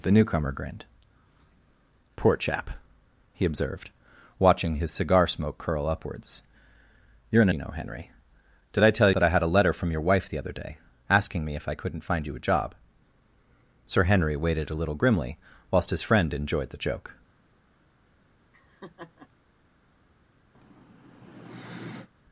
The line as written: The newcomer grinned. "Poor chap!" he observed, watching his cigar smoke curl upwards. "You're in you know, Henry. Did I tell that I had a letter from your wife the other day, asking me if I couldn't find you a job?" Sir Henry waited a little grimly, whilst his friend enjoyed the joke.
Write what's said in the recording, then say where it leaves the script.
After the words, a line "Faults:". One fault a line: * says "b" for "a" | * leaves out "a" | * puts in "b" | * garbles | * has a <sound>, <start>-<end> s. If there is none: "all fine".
The newcomer grinned. "Poor chap!" he observed, watching his cigar smoke curl upwards. "You're in you know, Henry. Did I tell that I had a letter from your wife the other day, asking me if I couldn't find you a job?" Sir Henry waited a little grimly, whilst his friend enjoyed the joke.
Faults:
* has a laugh, 18.5-19.3 s
* has a sigh, 20.5-22.1 s